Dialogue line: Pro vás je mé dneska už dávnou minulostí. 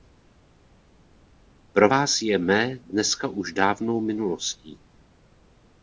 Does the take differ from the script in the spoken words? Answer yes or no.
no